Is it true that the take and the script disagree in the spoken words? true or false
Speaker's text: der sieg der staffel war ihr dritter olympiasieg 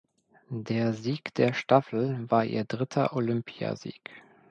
false